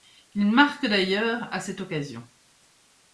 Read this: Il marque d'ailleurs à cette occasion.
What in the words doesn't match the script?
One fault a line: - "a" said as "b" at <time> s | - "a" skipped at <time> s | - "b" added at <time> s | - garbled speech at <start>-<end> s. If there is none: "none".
none